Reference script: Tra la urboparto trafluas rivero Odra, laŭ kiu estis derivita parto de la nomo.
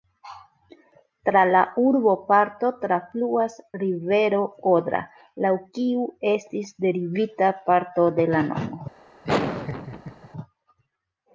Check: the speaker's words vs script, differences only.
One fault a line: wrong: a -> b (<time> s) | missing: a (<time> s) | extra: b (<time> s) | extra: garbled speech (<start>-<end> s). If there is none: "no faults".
no faults